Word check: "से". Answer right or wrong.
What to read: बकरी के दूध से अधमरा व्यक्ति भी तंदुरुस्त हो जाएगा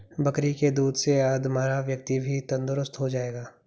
right